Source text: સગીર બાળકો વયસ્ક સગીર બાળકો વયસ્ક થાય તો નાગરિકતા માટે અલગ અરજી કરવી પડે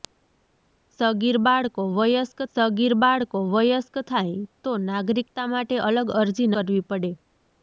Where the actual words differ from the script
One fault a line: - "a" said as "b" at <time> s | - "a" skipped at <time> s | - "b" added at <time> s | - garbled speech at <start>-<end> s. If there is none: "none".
none